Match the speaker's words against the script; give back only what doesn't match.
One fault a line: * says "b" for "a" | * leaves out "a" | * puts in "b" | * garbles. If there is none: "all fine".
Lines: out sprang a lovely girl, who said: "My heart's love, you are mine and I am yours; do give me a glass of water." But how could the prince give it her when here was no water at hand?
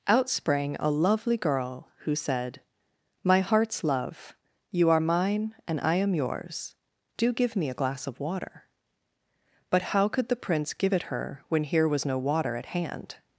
all fine